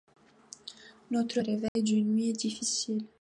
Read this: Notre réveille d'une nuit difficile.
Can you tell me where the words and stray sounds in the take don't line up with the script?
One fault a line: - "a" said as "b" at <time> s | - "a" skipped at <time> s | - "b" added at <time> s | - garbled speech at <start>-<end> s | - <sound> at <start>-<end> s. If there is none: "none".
- dropout at 1.7-1.8 s